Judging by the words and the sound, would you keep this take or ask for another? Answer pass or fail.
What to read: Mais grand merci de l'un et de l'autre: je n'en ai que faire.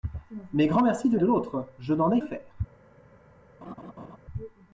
fail